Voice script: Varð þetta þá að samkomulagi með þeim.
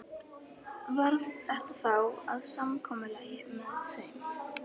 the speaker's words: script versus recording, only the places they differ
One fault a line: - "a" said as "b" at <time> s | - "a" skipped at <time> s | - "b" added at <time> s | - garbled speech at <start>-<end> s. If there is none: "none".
none